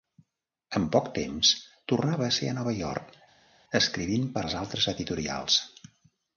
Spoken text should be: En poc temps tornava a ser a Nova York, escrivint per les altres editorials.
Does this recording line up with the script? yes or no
yes